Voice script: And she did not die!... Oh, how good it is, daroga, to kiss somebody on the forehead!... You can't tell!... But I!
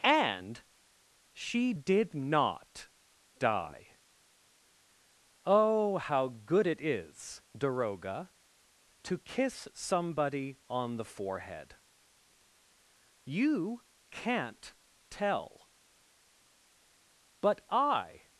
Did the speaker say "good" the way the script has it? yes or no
yes